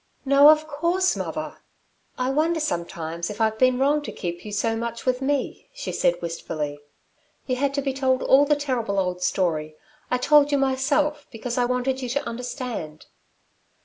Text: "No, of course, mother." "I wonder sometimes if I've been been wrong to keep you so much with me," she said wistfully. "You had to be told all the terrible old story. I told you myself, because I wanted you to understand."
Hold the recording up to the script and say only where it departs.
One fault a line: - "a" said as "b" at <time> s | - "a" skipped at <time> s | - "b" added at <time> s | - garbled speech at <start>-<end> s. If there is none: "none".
- "been" skipped at 3.8 s